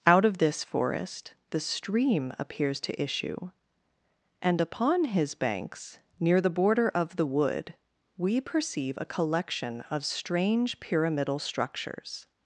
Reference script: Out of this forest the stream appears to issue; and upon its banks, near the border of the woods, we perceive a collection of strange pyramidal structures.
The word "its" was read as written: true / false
false